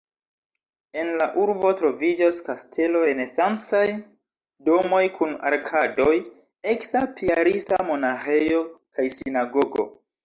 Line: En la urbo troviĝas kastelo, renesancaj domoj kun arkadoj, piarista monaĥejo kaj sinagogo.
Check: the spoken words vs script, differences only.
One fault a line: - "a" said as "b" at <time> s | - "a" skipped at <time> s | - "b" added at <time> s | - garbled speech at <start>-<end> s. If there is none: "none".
- "eksa" added at 6.8 s